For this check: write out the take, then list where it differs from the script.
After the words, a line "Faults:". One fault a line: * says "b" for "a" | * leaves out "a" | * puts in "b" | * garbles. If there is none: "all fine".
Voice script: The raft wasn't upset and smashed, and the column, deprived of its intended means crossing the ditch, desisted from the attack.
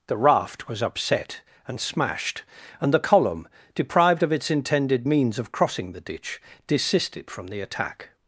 The raft was upset and smashed, and the column, deprived of its intended means of crossing the ditch, desisted from the attack.
Faults:
* says "was" for "wasn't"
* puts in "of"